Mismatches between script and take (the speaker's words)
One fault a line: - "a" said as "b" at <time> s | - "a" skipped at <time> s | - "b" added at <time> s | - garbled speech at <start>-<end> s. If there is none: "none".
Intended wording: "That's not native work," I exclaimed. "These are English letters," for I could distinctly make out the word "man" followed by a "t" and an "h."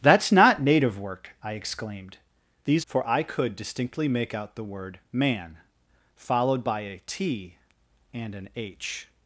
- "are English letters" skipped at 2.9 s